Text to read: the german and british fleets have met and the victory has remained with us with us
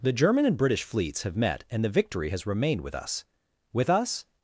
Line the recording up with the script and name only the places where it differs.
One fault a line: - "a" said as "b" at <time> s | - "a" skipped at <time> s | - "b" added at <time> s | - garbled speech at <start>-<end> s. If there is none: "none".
none